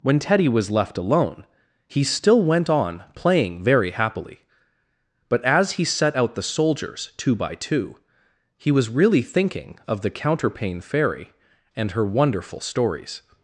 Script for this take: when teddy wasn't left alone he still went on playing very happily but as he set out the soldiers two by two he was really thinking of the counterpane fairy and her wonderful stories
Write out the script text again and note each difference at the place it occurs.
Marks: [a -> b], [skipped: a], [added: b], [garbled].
when teddy [wasn't -> was] left alone he still went on playing very happily but as he set out the soldiers two by two he was really thinking of the counterpane fairy and her wonderful stories